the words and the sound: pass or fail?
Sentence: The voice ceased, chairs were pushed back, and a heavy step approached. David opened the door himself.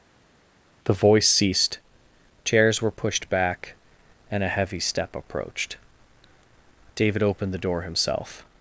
pass